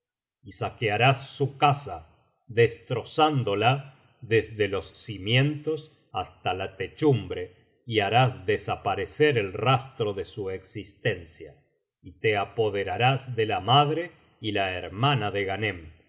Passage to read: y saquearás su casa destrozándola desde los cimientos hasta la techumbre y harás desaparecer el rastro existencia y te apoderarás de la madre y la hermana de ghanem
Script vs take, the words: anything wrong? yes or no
yes